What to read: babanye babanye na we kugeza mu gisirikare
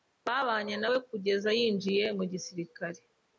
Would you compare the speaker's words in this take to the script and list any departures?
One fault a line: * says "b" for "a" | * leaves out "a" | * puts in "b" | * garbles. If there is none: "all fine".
* leaves out "babanye"
* puts in "yinjiye"